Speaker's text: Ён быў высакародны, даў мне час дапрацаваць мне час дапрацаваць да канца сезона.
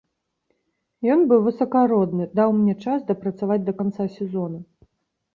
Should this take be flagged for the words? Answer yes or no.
yes